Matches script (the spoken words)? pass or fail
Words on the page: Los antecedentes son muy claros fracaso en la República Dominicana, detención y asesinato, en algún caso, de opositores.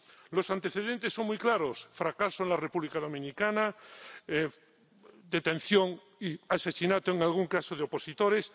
pass